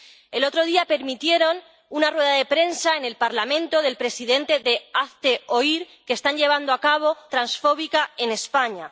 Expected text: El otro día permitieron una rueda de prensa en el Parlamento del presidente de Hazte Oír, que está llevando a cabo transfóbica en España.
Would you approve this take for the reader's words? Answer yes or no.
yes